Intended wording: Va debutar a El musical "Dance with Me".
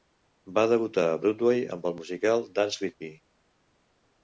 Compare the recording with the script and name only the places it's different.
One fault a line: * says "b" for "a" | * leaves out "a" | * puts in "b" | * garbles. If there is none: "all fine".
* puts in "Broadway amb"